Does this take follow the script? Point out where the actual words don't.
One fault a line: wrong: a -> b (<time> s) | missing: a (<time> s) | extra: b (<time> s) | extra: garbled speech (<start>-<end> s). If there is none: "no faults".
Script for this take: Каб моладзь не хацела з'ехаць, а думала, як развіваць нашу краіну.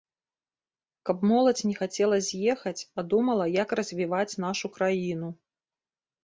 no faults